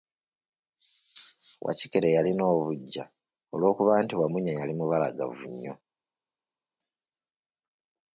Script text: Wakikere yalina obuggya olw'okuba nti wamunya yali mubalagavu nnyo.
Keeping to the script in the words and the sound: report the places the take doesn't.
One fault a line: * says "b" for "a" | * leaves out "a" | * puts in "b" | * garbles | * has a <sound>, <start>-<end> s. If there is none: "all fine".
all fine